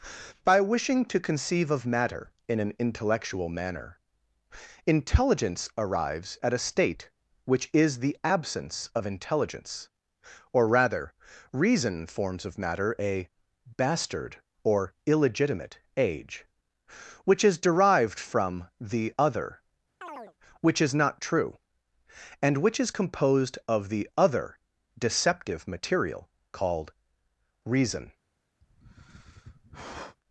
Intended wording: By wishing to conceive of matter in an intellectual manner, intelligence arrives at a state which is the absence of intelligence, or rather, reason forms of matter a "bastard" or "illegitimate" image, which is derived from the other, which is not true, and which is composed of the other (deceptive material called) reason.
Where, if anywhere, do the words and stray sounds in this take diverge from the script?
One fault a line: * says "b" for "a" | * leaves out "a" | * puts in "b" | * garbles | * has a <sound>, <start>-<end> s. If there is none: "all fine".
* says "age" for "image"
* has a chirp, 20.0-20.3 s
* has a sigh, 28.6-30.2 s